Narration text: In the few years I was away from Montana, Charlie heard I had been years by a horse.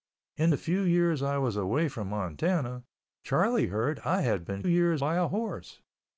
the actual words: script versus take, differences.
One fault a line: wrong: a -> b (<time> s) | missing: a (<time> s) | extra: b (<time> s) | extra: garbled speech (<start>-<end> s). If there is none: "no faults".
no faults